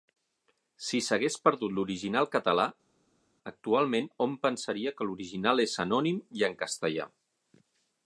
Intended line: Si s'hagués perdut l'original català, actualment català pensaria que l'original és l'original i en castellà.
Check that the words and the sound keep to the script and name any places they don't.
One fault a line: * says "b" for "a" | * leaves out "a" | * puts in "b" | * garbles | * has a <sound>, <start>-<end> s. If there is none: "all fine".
* says "hom" for "català"
* says "anònim" for "l'original"